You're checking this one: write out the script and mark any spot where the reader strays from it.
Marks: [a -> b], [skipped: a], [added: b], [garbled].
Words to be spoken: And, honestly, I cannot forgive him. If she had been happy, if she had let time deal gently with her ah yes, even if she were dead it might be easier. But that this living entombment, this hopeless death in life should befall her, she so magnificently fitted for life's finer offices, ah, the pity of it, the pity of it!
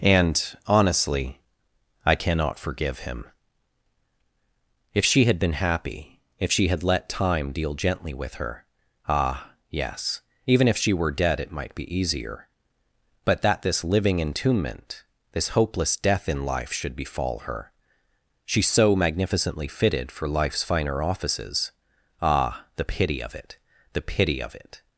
And, honestly, I cannot forgive him. If she had been happy, if she had let time deal gently with her ah yes, even if she were dead it might be easier. But that this living entombment, this hopeless death in life should befall her, she so magnificently fitted for life's finer offices, ah, the pity of it, the pity of it!